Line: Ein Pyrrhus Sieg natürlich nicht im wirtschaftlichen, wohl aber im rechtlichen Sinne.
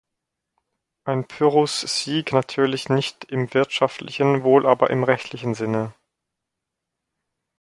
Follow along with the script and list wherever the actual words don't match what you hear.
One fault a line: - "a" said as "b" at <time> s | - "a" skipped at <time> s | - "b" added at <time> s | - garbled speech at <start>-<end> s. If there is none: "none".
none